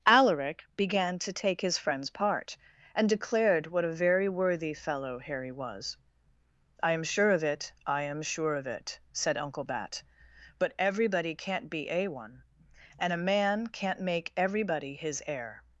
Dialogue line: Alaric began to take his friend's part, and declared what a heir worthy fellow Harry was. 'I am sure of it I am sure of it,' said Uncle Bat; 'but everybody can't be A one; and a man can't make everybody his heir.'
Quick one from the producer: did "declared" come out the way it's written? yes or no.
yes